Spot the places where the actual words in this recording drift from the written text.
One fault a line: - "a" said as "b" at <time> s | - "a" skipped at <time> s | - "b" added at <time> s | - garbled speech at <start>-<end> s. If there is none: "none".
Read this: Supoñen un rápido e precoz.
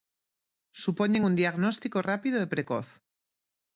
- "diagnóstico" added at 1.4 s